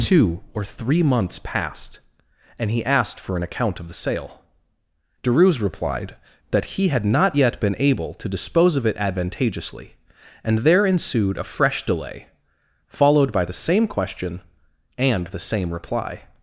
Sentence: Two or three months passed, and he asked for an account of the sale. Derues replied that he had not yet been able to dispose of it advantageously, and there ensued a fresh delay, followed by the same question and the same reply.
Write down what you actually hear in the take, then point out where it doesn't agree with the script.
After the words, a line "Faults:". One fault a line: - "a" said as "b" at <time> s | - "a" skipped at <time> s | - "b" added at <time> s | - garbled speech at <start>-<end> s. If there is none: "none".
Two or three months passed, and he asked for an account of the sale. Derues replied that he had not yet been able to dispose of it advantageously, and there ensued a fresh delay, followed by the same question and the same reply.
Faults:
none